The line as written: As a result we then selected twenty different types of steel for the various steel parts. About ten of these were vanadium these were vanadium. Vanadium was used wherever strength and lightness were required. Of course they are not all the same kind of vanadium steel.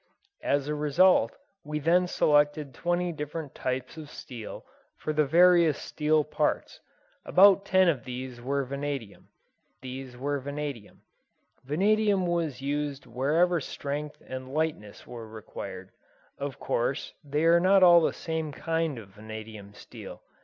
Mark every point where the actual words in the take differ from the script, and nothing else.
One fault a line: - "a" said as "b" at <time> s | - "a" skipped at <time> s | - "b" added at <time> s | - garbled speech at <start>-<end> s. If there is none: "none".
none